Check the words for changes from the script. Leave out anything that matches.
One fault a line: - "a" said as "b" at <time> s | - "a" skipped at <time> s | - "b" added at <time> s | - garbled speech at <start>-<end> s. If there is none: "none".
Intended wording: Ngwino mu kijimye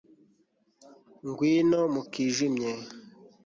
none